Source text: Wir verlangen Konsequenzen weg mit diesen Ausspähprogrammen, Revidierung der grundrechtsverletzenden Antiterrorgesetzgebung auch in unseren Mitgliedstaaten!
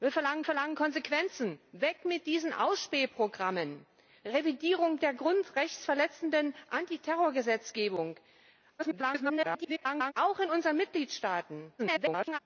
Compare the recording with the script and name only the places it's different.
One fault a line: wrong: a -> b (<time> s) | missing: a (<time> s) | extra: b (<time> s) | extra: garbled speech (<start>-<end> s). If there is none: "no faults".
extra: verlangen (0.4 s)
extra: garbled speech (8.8-10.1 s)
extra: garbled speech (11.8-12.4 s)